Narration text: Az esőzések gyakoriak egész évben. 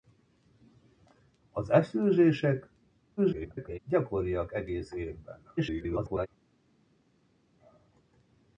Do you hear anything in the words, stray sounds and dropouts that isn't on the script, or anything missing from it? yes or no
yes